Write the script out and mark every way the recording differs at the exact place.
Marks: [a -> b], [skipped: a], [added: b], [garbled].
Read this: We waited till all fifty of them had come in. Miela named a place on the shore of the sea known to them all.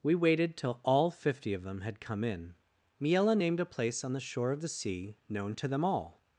We waited till all fifty of them had come in. Miela named a place on the shore of the sea known to them all.